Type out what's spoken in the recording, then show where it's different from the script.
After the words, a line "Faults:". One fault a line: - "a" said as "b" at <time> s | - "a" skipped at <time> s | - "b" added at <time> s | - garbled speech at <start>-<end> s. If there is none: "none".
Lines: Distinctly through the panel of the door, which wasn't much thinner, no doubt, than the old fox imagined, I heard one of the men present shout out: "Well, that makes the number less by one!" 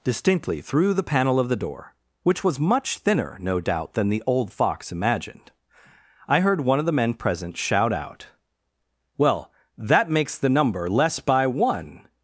Distinctly through the panel of the door, which was much thinner, no doubt, than the old fox imagined, I heard one of the men present shout out: "Well, that makes the number less by one!"
Faults:
- "wasn't" said as "was" at 2.4 s